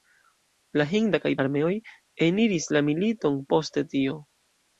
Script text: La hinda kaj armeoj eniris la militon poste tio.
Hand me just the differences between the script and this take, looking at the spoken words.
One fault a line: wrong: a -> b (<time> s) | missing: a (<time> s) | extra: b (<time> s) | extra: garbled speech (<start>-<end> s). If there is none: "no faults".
no faults